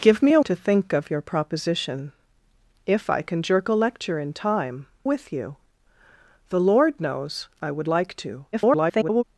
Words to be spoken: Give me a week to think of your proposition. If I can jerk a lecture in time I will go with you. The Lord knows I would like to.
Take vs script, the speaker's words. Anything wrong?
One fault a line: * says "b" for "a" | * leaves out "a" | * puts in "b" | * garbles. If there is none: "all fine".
* leaves out "week"
* leaves out "I will go"
* garbles